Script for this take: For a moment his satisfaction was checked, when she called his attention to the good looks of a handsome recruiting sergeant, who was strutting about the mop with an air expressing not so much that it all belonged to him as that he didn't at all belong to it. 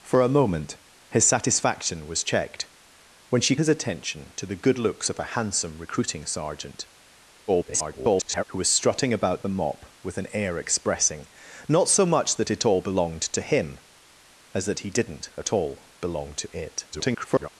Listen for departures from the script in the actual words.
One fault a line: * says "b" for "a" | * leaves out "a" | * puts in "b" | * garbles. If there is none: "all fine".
* leaves out "called"
* garbles
* garbles